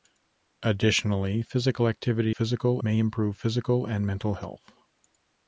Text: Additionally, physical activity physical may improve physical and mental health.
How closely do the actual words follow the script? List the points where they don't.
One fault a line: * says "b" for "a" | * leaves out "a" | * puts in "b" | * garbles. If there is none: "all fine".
all fine